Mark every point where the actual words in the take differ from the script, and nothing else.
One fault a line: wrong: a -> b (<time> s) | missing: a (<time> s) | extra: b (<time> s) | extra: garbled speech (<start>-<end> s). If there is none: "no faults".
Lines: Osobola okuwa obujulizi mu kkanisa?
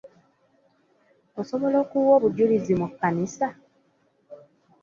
no faults